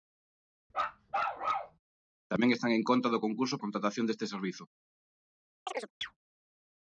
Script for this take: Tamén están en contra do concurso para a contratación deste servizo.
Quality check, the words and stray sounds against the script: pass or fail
fail